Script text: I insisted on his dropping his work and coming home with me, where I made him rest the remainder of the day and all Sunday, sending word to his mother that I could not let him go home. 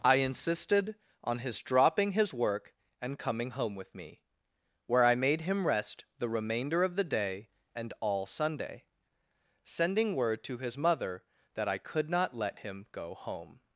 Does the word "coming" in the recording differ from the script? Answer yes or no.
no